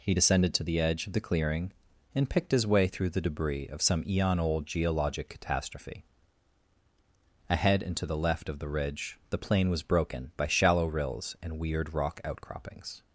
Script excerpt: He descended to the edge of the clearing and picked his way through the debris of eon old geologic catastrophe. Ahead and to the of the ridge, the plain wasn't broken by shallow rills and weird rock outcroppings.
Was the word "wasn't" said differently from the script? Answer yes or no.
yes